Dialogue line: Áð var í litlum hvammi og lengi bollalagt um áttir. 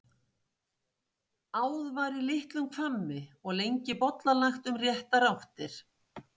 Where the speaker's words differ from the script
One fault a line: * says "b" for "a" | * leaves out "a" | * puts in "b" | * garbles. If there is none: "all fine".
* puts in "réttar"